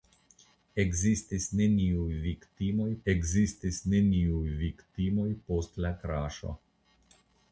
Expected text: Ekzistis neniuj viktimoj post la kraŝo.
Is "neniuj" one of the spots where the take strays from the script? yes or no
no